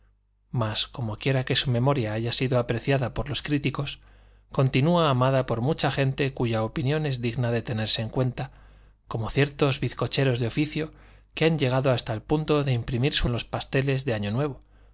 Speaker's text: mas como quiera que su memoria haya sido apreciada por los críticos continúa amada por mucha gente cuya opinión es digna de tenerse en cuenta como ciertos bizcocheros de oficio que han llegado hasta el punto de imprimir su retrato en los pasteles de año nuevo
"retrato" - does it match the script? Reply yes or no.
no